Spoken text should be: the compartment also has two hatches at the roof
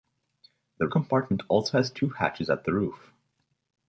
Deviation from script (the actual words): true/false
false